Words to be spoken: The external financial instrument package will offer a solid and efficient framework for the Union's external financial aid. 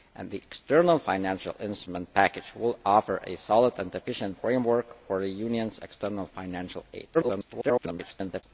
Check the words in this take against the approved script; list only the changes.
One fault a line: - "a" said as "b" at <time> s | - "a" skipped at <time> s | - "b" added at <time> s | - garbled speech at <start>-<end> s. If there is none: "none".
- garbled speech at 7.1-8.4 s